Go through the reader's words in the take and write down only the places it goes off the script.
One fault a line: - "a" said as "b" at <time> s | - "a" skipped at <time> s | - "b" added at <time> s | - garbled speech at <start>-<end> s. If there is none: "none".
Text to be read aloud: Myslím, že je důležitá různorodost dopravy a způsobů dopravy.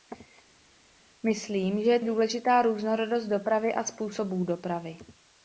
none